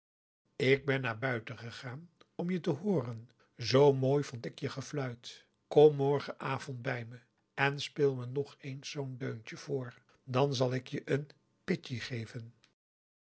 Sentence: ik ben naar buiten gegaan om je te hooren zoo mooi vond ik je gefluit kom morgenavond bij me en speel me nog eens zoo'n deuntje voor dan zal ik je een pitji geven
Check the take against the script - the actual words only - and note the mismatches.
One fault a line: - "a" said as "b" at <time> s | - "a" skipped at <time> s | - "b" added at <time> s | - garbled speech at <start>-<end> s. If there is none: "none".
none